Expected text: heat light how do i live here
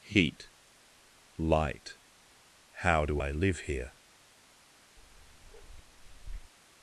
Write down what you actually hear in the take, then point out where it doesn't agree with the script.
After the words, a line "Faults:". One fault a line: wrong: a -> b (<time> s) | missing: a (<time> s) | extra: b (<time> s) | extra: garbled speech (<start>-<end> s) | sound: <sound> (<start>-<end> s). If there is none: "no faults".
heat light how do i live here
Faults:
sound: bark (5.0-6.5 s)